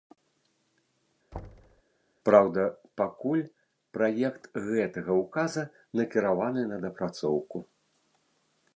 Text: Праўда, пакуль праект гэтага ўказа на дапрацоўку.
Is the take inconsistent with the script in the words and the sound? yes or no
yes